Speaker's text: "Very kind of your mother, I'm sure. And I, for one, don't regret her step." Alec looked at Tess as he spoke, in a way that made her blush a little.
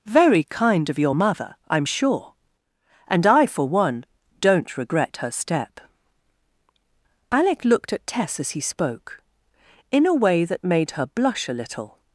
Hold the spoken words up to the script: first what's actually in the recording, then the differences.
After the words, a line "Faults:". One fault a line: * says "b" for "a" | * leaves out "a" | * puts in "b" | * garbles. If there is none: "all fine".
"Very kind of your mother, I'm sure. And I, for one, don't regret her step." Alec looked at Tess as he spoke, in a way that made her blush a little.
Faults:
all fine